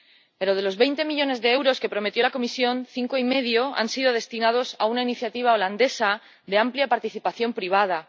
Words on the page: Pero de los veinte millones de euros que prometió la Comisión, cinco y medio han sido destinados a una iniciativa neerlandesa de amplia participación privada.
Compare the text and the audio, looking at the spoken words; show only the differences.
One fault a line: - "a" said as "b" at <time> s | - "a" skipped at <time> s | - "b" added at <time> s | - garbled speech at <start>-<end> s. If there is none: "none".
none